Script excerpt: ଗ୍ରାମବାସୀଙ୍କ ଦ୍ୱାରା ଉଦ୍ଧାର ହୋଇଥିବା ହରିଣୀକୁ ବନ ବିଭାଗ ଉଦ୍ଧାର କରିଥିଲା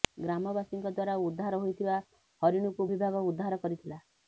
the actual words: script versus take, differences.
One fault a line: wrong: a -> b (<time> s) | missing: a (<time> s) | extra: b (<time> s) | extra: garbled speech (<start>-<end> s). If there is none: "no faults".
missing: ବନ (2.9 s)